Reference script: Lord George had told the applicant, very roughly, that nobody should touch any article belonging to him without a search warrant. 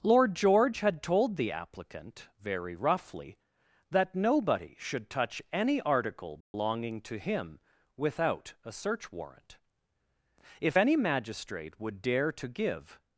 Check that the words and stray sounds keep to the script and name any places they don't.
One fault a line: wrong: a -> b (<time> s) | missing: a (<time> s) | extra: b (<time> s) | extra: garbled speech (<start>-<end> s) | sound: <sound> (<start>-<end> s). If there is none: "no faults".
sound: dropout (6.4-6.5 s)
extra: If any magistrate would dare to give (10.6 s)